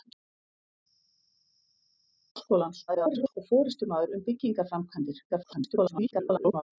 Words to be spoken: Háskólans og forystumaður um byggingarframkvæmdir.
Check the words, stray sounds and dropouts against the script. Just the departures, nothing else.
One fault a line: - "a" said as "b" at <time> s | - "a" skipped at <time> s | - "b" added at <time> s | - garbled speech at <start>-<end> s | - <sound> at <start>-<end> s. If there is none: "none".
- garbled speech at 2.9-3.4 s
- garbled speech at 5.3-6.6 s